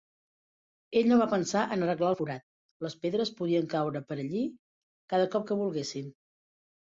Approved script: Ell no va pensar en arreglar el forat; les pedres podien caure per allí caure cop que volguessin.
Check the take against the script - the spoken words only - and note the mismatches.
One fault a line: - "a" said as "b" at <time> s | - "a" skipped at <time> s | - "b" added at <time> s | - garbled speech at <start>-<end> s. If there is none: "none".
- "caure" said as "cada" at 5.1 s